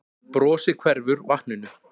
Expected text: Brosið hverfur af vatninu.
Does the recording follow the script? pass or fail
pass